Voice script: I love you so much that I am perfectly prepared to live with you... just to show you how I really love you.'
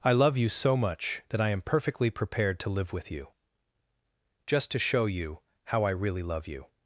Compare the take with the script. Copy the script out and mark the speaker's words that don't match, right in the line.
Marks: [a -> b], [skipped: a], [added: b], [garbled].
I love you so much that I am perfectly prepared to live with you... just to show you how I really love you.'